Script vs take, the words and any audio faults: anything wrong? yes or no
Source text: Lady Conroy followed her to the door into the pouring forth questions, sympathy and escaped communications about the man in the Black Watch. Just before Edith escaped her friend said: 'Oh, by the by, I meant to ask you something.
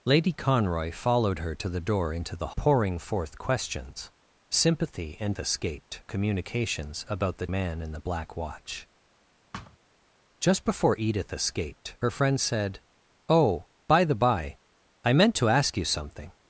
yes